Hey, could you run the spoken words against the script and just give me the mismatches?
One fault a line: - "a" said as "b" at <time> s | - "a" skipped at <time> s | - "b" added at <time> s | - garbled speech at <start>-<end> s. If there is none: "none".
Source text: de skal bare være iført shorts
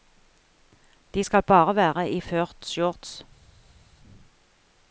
none